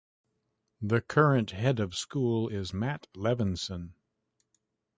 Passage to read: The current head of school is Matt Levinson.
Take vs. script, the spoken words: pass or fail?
pass